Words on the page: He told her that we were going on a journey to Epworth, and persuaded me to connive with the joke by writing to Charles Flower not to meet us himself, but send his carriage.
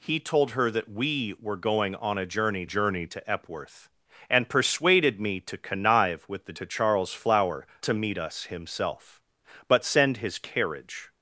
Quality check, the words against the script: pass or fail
fail